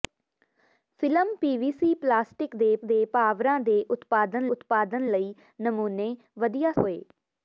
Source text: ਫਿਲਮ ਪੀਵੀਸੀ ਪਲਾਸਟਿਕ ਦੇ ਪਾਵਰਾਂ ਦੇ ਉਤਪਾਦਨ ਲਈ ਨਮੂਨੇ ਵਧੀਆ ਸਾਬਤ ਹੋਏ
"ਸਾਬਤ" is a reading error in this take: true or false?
true